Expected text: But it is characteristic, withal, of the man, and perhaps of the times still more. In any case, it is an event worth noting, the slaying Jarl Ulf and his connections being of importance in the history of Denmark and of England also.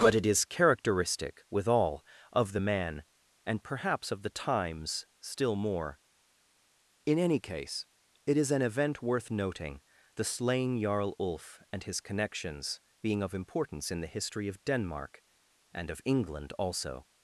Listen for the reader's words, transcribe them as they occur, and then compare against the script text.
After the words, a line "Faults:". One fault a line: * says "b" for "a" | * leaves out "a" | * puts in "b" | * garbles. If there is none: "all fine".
But it is characteristic, withal, of the man, and perhaps of the times still more. In any case, it is an event worth noting, the slaying Jarl Ulf and his connections being of importance in the history of Denmark and of England also.
Faults:
all fine